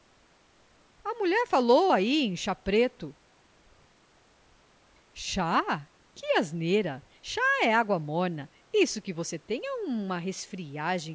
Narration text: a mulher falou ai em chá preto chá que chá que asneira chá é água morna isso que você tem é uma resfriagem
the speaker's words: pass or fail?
fail